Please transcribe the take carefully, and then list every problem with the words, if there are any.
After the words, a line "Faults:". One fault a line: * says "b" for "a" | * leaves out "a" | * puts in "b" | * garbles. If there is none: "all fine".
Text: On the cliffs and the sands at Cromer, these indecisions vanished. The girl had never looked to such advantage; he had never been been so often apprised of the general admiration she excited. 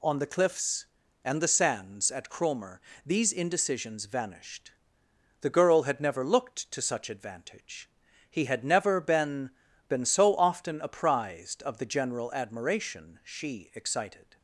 On the cliffs and the sands at Cromer, these indecisions vanished. The girl had never looked to such advantage; he had never been been so often apprised of the general admiration she excited.
Faults:
all fine